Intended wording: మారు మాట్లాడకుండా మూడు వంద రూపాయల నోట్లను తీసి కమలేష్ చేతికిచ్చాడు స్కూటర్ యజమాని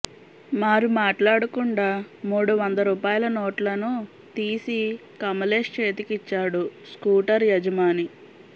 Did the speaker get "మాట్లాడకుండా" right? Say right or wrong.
right